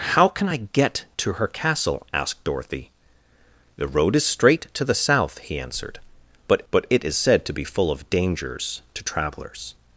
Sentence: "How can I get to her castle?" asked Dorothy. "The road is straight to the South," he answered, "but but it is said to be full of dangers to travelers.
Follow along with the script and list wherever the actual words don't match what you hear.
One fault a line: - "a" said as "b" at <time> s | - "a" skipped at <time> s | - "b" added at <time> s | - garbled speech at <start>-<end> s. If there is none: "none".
none